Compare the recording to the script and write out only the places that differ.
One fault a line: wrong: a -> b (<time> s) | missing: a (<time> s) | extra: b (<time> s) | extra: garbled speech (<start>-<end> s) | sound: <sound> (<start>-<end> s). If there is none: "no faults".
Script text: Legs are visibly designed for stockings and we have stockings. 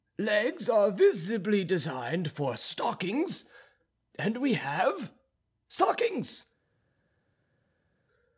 no faults